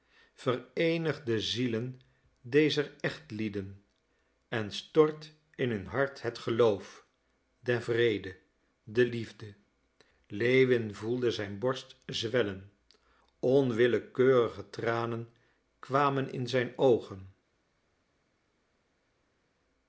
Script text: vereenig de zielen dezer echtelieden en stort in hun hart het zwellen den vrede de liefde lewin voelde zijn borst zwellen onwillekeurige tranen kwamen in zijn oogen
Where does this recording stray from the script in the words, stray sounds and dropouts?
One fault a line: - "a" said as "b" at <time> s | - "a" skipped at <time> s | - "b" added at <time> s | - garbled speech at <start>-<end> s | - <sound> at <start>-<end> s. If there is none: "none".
- "zwellen" said as "geloof" at 6.4 s